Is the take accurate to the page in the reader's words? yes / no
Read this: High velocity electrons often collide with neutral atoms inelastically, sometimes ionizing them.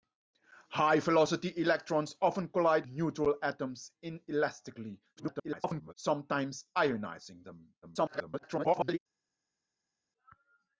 no